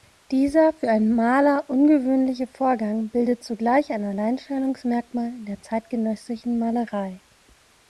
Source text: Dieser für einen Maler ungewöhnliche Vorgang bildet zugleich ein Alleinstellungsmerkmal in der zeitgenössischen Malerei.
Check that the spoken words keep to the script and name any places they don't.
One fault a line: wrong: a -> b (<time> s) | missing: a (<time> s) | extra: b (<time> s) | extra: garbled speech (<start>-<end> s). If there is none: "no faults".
no faults